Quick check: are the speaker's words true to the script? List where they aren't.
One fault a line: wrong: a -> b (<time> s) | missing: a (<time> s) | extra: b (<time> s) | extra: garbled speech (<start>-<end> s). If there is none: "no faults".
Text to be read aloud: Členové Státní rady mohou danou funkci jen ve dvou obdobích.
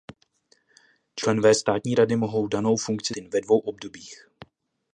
no faults